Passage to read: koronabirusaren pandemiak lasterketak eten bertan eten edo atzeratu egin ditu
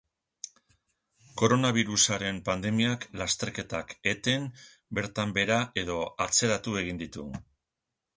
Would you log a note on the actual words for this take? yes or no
yes